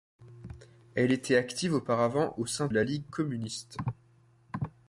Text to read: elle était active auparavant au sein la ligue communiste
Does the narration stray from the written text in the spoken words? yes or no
no